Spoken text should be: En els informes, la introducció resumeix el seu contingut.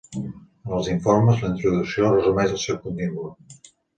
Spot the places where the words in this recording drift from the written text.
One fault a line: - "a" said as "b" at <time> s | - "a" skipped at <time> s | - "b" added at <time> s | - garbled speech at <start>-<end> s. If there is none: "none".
none